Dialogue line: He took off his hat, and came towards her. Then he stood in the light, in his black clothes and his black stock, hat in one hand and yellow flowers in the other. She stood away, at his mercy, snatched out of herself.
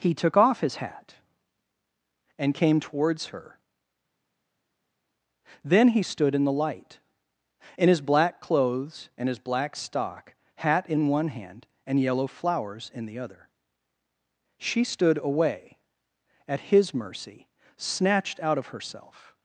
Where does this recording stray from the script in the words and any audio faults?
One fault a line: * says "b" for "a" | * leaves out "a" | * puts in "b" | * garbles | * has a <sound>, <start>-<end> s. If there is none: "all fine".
all fine